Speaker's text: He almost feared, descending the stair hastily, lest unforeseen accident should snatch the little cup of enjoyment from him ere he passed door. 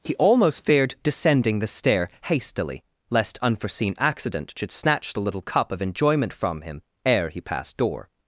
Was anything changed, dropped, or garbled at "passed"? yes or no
no